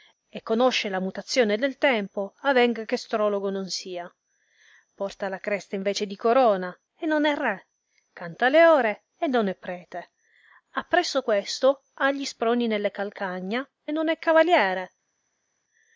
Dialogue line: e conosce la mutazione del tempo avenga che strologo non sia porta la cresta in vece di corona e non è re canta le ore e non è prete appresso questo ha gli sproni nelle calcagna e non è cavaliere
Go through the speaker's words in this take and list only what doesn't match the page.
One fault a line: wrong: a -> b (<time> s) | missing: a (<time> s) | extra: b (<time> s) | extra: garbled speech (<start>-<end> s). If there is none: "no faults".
no faults